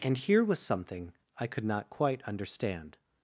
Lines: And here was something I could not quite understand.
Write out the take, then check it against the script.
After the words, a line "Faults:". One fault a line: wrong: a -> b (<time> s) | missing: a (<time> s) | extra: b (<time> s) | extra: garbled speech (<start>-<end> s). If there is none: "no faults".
And here was something I could not quite understand.
Faults:
no faults